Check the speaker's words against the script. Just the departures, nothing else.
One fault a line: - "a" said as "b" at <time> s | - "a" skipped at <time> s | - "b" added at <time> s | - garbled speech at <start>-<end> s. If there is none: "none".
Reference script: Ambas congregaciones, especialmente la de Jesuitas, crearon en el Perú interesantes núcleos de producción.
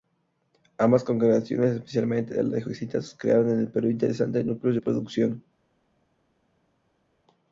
none